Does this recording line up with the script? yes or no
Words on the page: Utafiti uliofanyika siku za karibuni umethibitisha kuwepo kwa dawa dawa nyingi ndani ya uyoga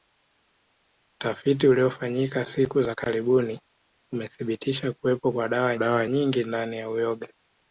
yes